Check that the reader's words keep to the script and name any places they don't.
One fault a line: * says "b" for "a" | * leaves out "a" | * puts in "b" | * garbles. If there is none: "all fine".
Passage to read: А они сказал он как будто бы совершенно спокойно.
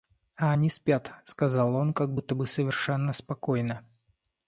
* puts in "спят"